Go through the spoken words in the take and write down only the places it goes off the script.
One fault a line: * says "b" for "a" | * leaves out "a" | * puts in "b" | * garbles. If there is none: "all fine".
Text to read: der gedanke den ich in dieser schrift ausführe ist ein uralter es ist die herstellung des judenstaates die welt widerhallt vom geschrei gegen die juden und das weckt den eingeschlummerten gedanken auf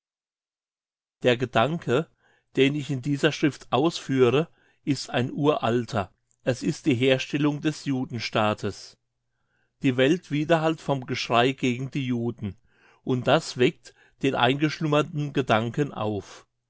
all fine